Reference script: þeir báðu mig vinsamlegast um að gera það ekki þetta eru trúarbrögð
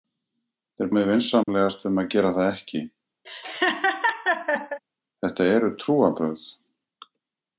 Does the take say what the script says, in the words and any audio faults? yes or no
no